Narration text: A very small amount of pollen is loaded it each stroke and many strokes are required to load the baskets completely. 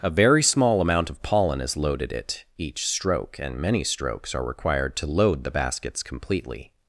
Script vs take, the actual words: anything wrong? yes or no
no